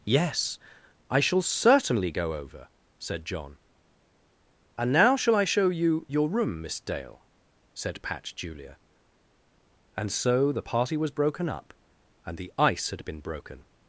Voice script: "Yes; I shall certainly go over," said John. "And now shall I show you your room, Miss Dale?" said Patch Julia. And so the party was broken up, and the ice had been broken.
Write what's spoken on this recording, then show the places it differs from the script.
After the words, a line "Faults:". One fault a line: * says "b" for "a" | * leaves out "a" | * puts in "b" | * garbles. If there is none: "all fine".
"Yes; I shall certainly go over," said John. "And now shall I show you your room, Miss Dale?" said Patch Julia. And so the party was broken up, and the ice had been broken.
Faults:
all fine